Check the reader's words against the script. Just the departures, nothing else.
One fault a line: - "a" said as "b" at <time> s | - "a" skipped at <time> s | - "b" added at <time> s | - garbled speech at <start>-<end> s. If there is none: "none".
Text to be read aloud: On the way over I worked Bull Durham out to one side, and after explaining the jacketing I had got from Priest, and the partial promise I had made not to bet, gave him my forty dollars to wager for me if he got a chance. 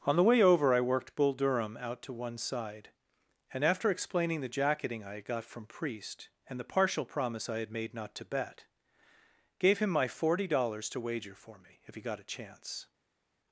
none